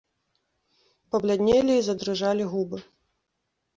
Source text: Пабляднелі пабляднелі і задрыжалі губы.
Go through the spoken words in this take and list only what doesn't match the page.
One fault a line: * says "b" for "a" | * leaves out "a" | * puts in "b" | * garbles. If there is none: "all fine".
* leaves out "пабляднелі"